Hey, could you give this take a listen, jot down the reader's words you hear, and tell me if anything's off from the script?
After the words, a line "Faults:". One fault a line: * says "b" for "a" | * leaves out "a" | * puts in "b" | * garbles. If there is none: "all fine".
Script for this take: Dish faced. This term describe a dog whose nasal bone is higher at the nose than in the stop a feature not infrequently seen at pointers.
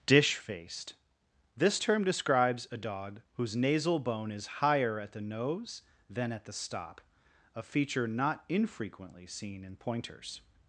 Dish faced. This term describes a dog whose nasal bone is higher at the nose than at the stop a feature not infrequently seen in pointers.
Faults:
* says "describes" for "describe"
* says "at" for "in"
* says "in" for "at"